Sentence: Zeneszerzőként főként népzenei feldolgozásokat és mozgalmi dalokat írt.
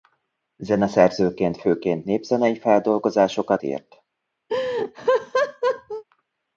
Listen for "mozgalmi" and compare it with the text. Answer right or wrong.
wrong